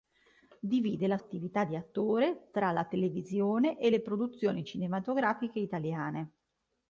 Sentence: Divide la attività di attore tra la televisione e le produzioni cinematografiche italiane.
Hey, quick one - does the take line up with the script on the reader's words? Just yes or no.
yes